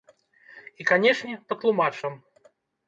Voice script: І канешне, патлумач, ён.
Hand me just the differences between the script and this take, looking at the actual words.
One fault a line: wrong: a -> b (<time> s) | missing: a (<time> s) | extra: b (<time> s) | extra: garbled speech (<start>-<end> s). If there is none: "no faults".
no faults